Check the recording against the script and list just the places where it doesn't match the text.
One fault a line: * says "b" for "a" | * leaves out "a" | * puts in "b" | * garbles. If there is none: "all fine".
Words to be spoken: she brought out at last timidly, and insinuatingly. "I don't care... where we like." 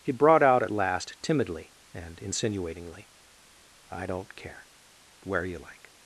* says "he" for "she"
* says "you" for "we"